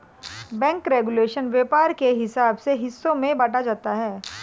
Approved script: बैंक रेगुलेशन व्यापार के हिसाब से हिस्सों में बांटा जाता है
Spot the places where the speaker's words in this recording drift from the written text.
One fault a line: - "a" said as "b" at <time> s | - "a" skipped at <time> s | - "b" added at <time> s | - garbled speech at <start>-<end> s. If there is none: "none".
none